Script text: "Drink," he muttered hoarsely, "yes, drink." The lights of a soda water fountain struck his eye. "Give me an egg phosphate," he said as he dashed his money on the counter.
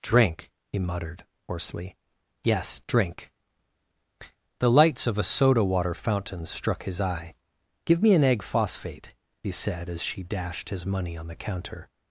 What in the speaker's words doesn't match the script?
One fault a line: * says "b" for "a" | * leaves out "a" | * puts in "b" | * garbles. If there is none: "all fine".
* says "she" for "he"